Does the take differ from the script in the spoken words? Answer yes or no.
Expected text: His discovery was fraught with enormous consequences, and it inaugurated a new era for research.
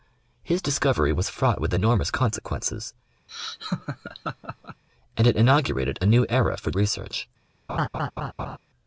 no